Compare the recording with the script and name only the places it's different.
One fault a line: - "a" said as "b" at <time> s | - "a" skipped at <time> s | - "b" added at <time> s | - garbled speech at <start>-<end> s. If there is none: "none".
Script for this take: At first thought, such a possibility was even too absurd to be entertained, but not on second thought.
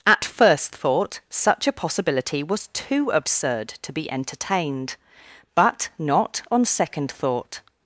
- "even" skipped at 2.7 s